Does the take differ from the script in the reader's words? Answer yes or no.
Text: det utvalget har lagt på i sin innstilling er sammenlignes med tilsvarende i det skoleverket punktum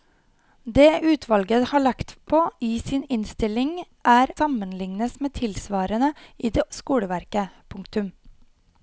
no